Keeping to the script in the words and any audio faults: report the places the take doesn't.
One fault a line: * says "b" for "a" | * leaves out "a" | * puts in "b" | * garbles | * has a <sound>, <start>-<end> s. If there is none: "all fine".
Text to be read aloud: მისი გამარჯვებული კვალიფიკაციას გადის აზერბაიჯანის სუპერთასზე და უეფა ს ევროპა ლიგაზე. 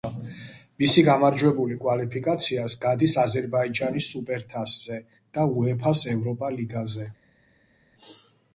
all fine